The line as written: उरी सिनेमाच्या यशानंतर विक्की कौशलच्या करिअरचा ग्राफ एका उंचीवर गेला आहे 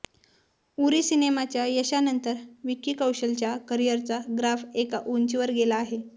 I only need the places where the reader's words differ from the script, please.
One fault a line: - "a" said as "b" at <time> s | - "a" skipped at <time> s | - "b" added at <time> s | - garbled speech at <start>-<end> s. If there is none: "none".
none